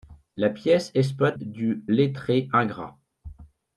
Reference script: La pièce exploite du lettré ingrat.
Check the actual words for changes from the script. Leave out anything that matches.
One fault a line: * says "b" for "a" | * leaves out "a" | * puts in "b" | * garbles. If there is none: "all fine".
all fine